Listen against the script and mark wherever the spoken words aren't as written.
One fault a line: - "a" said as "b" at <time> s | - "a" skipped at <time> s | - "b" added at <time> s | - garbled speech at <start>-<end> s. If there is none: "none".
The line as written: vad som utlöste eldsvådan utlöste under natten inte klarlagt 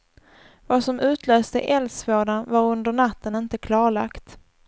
- "utlöste" said as "var" at 2.5 s